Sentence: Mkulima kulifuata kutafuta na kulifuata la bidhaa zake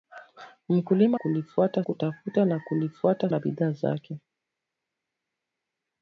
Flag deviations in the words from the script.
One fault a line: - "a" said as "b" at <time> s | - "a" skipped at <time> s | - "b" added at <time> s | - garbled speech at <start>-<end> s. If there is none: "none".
none